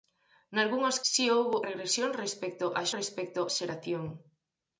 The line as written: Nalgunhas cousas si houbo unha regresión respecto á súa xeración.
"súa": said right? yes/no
no